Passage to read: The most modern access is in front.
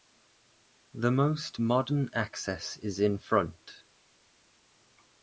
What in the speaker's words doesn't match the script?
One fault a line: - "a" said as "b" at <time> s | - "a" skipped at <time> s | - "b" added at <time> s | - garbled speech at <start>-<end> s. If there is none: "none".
none